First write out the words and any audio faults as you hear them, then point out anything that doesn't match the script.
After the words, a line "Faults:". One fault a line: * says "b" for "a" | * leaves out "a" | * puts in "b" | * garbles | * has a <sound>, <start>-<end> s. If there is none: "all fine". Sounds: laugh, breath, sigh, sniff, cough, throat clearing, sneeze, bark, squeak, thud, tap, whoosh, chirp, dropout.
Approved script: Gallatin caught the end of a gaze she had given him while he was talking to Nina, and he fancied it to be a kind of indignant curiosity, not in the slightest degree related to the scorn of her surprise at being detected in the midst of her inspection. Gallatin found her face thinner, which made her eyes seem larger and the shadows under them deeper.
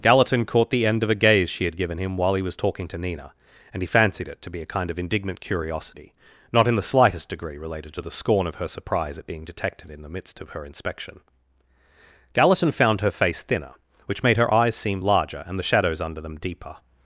Gallatin caught the end of a gaze she had given him while he was talking to Nina, and he fancied it to be a kind of indignant curiosity, not in the slightest degree related to the scorn of her surprise at being detected in the midst of her inspection. Gallatin found her face thinner, which made her eyes seem larger and the shadows under them deeper.
Faults:
all fine